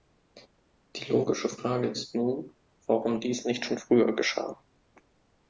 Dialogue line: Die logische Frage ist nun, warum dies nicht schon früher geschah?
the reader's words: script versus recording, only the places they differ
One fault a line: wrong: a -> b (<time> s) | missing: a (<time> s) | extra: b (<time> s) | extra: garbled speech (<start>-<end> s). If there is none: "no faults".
no faults